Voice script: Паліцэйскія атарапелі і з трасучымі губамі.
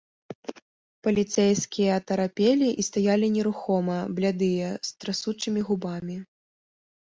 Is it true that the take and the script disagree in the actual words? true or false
true